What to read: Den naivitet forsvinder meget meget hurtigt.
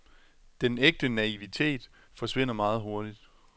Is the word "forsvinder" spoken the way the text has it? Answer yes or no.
yes